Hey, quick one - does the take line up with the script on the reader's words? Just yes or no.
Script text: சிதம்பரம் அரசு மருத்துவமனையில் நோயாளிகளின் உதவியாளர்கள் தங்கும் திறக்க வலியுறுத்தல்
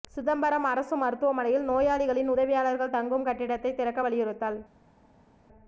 no